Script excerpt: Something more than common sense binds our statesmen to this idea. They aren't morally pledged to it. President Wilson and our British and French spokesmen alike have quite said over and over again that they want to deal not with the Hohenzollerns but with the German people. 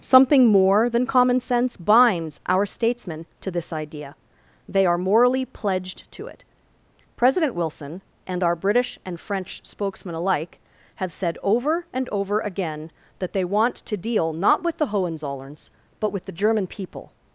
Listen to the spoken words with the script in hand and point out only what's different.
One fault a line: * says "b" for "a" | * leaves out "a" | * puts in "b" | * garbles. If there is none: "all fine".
* says "are" for "aren't"
* leaves out "quite"